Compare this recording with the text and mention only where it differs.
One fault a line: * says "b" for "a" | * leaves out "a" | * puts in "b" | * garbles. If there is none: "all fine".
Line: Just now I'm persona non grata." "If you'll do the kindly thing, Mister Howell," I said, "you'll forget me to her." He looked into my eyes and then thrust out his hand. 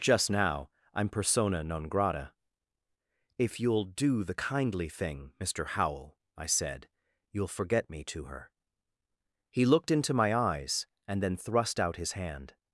all fine